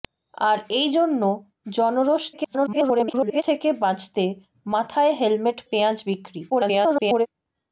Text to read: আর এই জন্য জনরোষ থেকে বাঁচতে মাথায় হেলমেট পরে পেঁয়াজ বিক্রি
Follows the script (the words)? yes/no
no